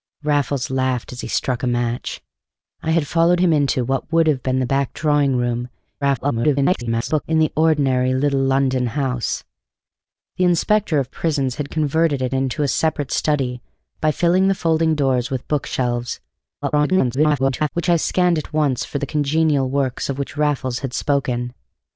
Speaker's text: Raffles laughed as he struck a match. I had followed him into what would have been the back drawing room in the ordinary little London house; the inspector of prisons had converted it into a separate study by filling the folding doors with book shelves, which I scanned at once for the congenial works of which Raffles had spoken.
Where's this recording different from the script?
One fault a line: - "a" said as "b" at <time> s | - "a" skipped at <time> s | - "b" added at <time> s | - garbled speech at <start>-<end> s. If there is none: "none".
- garbled speech at 6.0-7.2 s
- garbled speech at 16.6-17.7 s